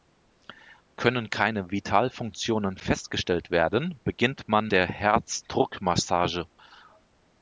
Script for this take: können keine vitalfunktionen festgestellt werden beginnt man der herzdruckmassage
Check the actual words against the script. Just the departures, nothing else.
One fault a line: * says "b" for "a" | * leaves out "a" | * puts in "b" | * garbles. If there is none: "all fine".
all fine